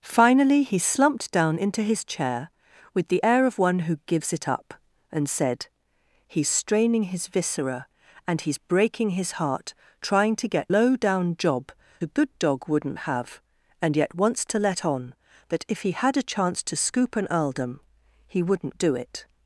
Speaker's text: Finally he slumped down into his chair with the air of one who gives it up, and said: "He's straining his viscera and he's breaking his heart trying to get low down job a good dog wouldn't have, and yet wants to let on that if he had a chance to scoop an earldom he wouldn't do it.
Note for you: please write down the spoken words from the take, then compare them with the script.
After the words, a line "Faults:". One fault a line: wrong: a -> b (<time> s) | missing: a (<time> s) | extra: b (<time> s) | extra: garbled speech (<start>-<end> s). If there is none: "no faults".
Finally he slumped down into his chair with the air of one who gives it up, and said: "He's straining his viscera and he's breaking his heart trying to get low down job a good dog wouldn't have, and yet wants to let on that if he had a chance to scoop an earldom he wouldn't do it.
Faults:
no faults